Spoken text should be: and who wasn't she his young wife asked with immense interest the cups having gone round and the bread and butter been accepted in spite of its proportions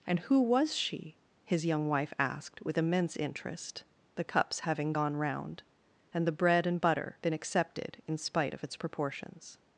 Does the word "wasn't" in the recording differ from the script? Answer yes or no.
yes